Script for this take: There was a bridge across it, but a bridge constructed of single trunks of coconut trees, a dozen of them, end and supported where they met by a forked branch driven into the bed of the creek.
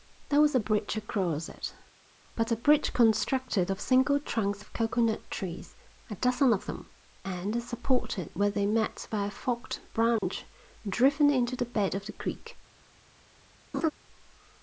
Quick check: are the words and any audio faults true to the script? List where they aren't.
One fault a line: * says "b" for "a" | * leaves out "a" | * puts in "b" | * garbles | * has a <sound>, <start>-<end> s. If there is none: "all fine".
* has a dropout, 10.2-10.2 s
* has a laugh, 13.7-13.9 s